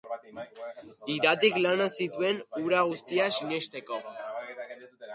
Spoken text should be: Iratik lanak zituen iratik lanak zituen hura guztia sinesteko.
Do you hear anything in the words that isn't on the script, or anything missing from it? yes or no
yes